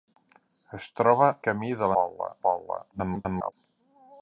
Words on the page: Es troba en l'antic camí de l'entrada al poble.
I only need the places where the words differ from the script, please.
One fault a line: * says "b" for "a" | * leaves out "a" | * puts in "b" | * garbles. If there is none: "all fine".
* leaves out "en l'antic"
* says "poble" for "l'entrada"
* garbles